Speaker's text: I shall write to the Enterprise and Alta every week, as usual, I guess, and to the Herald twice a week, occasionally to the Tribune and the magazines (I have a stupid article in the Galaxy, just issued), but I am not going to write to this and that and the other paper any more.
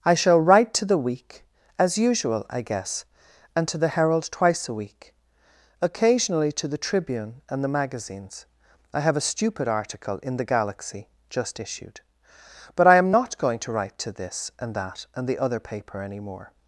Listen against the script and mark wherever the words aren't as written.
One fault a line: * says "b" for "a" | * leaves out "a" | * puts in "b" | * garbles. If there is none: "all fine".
* leaves out "Enterprise and Alta every"